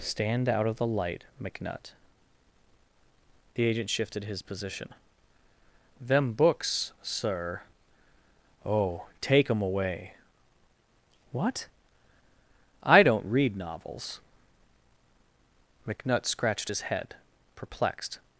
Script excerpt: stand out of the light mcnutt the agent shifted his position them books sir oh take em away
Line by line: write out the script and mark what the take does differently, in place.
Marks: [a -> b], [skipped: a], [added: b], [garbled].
stand out of the light mcnutt the agent shifted his position them books sir oh take em away [added: what i don't read novels mcnutt scratched his head perplexed]